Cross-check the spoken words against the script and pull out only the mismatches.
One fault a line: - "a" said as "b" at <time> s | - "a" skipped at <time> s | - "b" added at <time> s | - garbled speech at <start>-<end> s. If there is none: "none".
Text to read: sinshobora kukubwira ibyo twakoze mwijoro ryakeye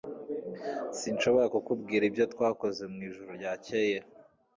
none